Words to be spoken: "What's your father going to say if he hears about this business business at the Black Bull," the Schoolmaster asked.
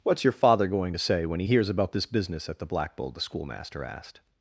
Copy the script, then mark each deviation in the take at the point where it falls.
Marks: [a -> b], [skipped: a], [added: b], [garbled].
"What's your father going to say [if -> when] he hears about this business [skipped: business] at the Black Bull," the Schoolmaster asked.